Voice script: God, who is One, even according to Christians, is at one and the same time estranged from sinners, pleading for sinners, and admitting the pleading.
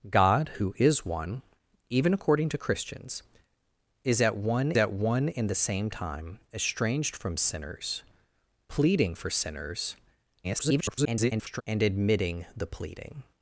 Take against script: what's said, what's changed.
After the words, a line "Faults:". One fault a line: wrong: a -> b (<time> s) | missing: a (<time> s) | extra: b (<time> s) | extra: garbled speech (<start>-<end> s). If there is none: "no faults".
God, who is One, even according to Christians, is at one at one and the same time estranged from sinners, pleading for sinners, [garbled] and admitting the pleading.
Faults:
extra: at one (4.8 s)
extra: garbled speech (10.4-11.6 s)